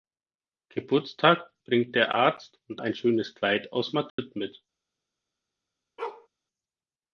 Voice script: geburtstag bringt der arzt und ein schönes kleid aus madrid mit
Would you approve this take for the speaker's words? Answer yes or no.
yes